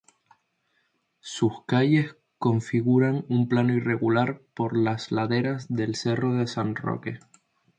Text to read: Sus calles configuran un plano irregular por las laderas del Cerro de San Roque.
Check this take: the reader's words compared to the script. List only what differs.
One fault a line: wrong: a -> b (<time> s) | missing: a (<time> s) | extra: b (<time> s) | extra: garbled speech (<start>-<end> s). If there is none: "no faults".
no faults